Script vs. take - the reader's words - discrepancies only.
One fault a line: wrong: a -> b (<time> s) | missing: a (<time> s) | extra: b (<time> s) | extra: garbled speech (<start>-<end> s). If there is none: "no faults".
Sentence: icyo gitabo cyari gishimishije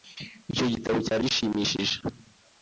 no faults